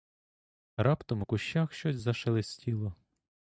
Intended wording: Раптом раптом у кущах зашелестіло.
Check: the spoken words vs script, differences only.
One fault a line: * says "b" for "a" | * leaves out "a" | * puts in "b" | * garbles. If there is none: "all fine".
* leaves out "раптом"
* puts in "щось"